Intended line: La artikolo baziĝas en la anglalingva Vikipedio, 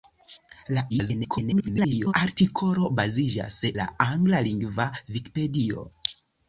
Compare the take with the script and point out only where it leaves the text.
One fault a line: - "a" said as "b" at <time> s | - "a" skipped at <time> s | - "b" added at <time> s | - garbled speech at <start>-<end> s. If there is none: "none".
- garbled speech at 0.9-2.1 s
- "en" skipped at 3.6 s